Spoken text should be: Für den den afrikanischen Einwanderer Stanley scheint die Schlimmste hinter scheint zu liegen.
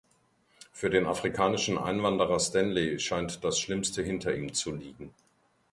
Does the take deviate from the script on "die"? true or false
true